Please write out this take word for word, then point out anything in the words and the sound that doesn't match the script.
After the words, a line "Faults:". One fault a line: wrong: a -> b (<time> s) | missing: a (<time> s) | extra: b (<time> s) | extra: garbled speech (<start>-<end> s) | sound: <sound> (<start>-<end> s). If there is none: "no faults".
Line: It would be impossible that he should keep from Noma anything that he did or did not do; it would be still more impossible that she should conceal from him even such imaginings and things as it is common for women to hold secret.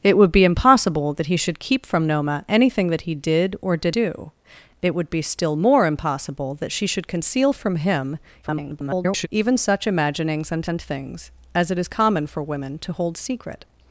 It would be impossible that he should keep from Noma anything that he did or did do; it would be still more impossible that she should conceal from him [garbled] even such imaginings and and things as it is common for women to hold secret.
Faults:
missing: not (4.0 s)
extra: garbled speech (8.4-9.3 s)
extra: and (10.7 s)